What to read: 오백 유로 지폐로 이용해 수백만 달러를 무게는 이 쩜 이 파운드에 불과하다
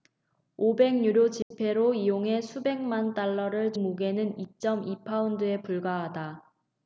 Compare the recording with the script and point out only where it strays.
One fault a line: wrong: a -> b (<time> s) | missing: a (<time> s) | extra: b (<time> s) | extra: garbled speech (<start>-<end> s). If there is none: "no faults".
no faults